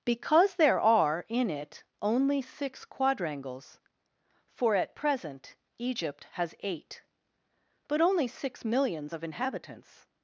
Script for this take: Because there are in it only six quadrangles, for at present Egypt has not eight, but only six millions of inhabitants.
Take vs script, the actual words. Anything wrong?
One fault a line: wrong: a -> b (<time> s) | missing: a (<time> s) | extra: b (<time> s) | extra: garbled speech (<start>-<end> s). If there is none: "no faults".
missing: not (6.5 s)